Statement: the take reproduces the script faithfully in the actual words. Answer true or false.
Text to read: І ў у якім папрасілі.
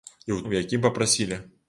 true